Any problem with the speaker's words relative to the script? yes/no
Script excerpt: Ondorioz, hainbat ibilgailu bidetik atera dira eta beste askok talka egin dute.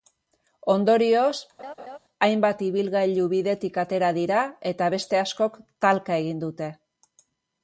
no